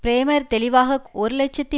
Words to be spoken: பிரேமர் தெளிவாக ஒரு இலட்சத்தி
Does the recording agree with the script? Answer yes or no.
yes